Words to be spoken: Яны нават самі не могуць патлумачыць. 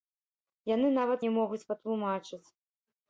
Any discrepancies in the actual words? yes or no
yes